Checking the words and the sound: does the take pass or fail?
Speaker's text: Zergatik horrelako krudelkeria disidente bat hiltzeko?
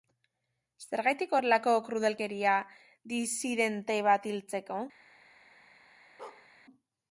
fail